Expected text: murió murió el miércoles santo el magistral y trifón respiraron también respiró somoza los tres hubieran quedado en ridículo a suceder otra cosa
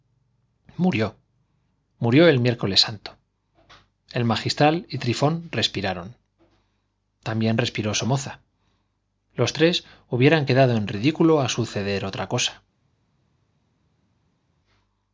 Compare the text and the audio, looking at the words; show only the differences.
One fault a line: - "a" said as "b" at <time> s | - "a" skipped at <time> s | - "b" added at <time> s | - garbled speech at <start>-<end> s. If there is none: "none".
none